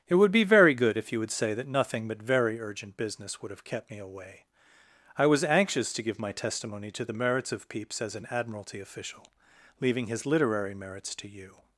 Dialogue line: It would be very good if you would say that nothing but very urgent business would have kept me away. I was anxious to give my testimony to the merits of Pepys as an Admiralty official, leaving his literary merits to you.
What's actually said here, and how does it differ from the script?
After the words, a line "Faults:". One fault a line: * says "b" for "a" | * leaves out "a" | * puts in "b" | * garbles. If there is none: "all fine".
It would be very good if you would say that nothing but very urgent business would have kept me away. I was anxious to give my testimony to the merits of Pepys as an Admiralty official, leaving his literary merits to you.
Faults:
all fine